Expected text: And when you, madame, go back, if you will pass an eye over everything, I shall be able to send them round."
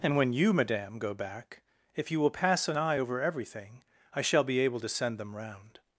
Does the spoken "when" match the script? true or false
true